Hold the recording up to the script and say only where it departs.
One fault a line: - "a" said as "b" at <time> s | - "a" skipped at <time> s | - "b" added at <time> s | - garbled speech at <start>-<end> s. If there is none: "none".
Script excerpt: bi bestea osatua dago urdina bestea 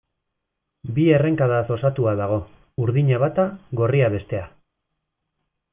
- "bestea" said as "errenkadaz" at 1.2 s
- "bata gorria" added at 3.2 s